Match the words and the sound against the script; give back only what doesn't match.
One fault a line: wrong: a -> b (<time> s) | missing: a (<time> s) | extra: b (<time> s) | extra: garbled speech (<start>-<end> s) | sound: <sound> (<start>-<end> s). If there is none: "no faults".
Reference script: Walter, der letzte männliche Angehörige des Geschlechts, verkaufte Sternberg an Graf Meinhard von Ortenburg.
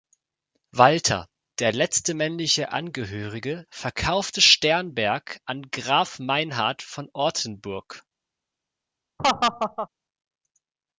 missing: des Geschlechts (3.7 s)
sound: laugh (9.2-9.9 s)